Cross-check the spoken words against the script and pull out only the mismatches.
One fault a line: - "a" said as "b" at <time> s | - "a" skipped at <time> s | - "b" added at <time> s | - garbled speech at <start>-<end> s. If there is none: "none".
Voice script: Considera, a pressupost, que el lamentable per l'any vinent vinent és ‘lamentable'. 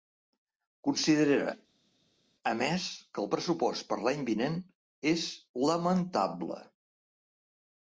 - "pressupost" said as "més" at 2.6 s
- "lamentable" said as "pressupost" at 3.3 s
- "vinent" skipped at 4.6 s